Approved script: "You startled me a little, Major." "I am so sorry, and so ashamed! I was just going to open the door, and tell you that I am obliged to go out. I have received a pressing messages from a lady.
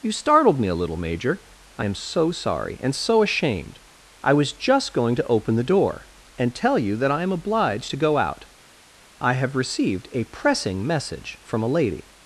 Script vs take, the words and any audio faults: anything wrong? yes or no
yes